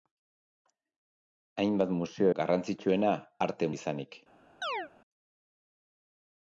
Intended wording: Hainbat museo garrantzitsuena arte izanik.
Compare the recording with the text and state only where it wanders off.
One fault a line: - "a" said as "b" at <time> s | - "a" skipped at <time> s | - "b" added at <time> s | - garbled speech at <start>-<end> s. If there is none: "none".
none